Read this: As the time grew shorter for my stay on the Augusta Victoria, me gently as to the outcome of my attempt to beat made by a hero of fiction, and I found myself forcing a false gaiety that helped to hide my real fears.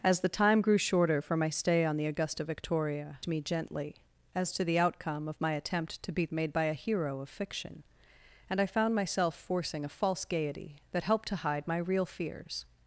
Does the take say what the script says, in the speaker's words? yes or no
yes